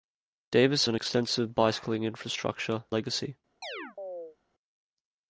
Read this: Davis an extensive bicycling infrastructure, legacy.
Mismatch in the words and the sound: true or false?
true